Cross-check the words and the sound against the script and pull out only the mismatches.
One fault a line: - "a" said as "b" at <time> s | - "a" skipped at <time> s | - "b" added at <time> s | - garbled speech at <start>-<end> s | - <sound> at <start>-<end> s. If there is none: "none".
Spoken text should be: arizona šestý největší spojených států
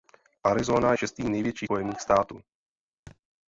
- thud at 3.1-3.2 s